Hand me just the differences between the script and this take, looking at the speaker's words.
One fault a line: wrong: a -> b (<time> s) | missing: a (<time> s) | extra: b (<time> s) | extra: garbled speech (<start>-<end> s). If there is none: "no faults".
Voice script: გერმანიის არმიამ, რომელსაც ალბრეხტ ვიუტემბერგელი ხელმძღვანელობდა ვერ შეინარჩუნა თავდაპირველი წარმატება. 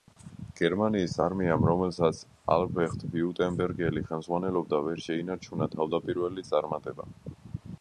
no faults